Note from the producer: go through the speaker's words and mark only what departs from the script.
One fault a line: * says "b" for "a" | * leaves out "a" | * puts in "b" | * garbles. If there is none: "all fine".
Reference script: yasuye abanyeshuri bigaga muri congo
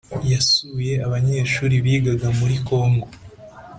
all fine